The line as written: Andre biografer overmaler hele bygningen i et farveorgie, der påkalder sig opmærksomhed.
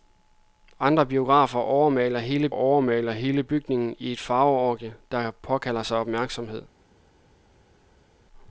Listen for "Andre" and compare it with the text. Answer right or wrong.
right